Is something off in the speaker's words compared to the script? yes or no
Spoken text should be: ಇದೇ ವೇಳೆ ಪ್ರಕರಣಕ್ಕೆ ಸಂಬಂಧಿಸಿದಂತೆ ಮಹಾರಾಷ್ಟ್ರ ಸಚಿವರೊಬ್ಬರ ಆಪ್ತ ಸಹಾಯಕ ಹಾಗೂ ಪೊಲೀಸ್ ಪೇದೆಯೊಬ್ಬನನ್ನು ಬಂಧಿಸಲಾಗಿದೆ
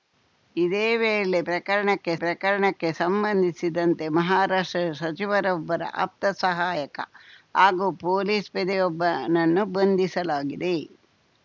yes